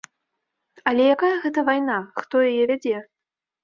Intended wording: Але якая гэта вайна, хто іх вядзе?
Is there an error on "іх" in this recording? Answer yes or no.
yes